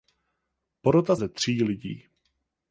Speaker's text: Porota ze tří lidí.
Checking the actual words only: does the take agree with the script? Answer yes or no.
yes